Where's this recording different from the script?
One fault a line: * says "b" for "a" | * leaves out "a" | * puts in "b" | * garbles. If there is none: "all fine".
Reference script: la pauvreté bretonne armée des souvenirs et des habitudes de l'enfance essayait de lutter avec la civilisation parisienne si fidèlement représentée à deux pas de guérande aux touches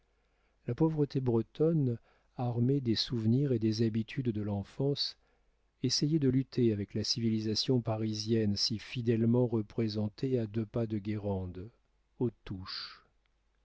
all fine